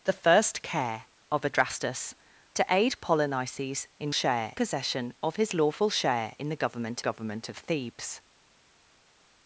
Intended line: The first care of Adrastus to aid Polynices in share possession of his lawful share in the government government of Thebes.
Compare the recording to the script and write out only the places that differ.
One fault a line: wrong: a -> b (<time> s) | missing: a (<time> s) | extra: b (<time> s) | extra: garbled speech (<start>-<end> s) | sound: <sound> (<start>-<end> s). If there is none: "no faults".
no faults